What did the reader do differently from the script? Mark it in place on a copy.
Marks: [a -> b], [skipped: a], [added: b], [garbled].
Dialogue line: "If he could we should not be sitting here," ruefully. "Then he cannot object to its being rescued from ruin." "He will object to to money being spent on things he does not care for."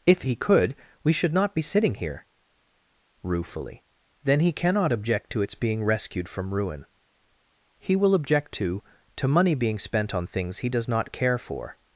"If he could we should not be sitting here," ruefully. "Then he cannot object to its being rescued from ruin." "He will object to to money being spent on things he does not care for."